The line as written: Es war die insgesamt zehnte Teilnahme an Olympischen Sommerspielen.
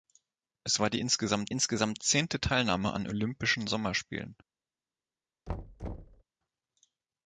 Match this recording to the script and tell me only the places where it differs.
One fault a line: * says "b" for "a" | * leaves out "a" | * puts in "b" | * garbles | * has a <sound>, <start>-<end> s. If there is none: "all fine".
* puts in "insgesamt"
* has a thud, 5.5-6.2 s